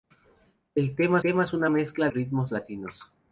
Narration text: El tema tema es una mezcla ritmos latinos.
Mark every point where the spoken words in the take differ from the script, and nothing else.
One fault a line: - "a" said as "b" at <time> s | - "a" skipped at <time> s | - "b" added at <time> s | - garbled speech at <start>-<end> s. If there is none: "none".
none